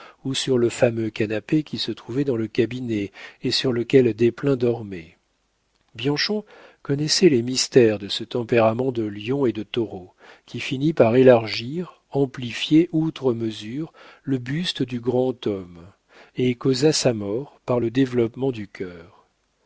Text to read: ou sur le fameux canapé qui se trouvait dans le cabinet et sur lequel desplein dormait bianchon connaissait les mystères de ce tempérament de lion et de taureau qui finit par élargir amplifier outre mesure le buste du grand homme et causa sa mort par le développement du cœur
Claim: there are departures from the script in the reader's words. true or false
false